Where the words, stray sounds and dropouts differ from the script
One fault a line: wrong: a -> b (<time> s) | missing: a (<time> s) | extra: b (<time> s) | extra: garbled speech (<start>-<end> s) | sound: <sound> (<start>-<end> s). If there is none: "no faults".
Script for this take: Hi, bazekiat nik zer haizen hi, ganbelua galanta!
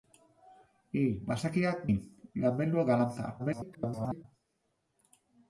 missing: nik zer haizen (1.8 s)
extra: garbled speech (3.4-4.2 s)